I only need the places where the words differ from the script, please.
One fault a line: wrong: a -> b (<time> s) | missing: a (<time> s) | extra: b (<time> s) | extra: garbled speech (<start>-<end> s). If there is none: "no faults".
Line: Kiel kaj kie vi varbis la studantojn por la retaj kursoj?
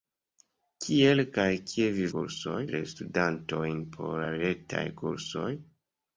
wrong: varbis -> kursoj (2.2 s)